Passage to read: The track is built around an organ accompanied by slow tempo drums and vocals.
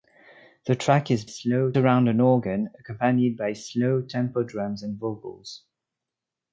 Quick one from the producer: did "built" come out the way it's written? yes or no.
no